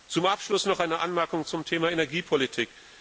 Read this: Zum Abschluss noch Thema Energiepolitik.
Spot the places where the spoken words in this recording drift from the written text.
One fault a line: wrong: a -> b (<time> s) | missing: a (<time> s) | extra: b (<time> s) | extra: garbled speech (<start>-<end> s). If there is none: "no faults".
extra: eine Anmerkung zum (0.8 s)